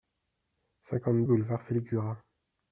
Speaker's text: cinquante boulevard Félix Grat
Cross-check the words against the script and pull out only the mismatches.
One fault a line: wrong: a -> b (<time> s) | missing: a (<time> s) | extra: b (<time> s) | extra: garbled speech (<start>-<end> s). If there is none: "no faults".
no faults